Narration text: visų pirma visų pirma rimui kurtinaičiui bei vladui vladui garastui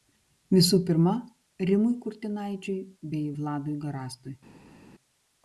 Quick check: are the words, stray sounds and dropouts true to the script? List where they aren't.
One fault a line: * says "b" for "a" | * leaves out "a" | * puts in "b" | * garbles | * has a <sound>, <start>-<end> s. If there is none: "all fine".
* leaves out "visų pirma"
* leaves out "vladui"